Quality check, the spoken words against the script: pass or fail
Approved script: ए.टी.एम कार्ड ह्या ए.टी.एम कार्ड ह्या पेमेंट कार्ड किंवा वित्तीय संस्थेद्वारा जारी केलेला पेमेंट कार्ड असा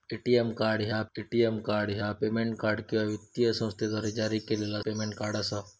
pass